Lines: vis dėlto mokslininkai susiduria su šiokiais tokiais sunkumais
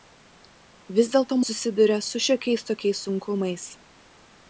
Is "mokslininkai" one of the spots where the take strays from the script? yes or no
yes